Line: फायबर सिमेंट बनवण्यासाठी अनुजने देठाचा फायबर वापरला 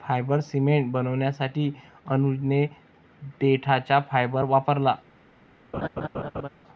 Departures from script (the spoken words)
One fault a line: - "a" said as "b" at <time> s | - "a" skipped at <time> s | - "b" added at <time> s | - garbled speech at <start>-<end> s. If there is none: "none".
none